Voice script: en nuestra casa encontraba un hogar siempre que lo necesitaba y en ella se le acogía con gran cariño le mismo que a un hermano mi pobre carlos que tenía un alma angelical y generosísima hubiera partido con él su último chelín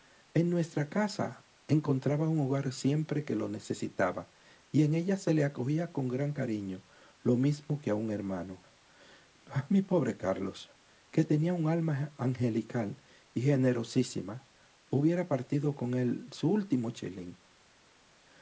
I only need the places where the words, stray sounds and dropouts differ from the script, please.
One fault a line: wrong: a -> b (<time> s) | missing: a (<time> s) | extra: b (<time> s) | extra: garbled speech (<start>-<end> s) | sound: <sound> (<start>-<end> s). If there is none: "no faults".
wrong: le -> lo (7.2 s)